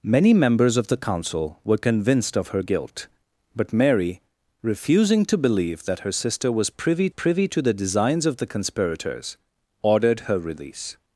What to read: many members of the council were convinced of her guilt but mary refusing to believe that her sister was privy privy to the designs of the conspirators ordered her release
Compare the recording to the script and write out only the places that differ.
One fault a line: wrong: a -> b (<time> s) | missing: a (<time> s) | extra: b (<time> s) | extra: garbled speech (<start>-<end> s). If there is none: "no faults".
no faults